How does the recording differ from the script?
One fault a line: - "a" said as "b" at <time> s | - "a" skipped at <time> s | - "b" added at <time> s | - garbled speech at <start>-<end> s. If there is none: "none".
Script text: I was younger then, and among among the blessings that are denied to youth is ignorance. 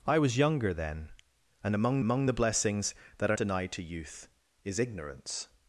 none